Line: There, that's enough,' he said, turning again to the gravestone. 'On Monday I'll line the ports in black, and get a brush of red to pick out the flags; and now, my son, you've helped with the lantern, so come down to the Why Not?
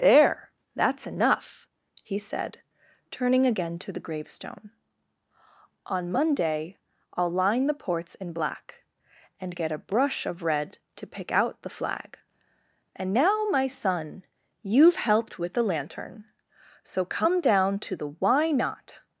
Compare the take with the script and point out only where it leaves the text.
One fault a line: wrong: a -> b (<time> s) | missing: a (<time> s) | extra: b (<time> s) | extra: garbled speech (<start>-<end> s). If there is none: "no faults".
wrong: flags -> flag (11.8 s)